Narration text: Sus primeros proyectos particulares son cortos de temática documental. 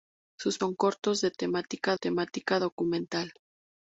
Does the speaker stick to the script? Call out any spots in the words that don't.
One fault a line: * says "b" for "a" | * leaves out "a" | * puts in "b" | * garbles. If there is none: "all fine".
* leaves out "primeros proyectos particulares"
* puts in "temática"